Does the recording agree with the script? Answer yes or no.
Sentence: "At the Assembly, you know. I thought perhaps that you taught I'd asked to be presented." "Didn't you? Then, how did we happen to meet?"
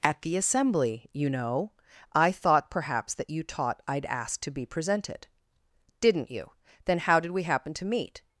yes